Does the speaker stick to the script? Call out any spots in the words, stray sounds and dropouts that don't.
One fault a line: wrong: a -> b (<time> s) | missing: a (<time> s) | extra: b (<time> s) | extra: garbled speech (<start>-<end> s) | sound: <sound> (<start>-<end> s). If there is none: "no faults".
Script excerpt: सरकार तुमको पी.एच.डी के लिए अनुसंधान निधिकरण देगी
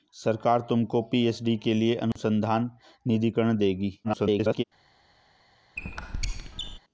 sound: dropout (2.1-2.2 s)
extra: garbled speech (4.0-4.6 s)
sound: squeak (5.8-6.8 s)